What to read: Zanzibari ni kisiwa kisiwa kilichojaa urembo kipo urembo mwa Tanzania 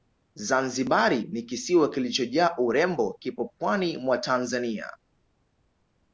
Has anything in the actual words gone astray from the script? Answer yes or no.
yes